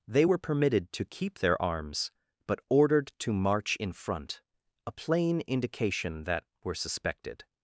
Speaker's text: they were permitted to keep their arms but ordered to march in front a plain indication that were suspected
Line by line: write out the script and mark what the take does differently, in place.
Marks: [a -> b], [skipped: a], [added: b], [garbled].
they were permitted to keep their arms but ordered to march in front a plain indication that were suspected